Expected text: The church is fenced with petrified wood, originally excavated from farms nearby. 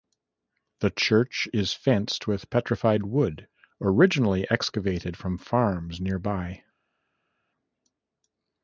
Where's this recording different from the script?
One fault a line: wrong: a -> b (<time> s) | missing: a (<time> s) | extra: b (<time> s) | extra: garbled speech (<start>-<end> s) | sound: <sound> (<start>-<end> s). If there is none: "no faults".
no faults